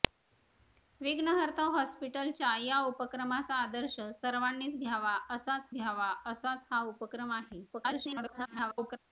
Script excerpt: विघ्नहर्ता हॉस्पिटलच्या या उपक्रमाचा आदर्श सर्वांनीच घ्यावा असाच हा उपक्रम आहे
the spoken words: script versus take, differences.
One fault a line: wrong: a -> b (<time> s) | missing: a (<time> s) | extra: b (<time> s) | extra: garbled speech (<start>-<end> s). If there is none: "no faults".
extra: घ्यावा असाच (5.7 s)
extra: garbled speech (7.7-9.0 s)